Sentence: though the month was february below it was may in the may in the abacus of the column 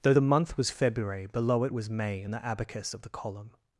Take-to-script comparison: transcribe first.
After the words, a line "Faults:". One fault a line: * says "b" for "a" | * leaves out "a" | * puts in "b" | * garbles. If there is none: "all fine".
though the month was february below it was may in the abacus of the column
Faults:
* leaves out "may in the"